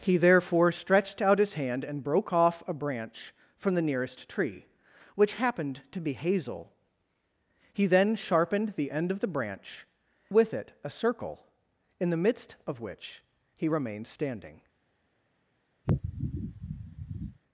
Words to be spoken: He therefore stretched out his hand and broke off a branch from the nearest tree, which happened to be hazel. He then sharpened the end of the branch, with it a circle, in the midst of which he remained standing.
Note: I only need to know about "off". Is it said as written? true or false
true